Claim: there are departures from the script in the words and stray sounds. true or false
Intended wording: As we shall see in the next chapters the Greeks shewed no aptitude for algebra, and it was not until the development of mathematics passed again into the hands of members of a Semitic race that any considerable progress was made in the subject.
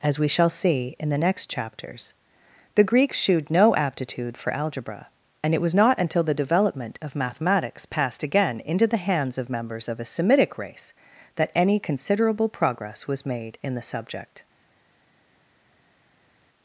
false